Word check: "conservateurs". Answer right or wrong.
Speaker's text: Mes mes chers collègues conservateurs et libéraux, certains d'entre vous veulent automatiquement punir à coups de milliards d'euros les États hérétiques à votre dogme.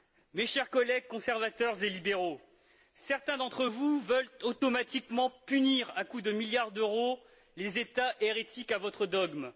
right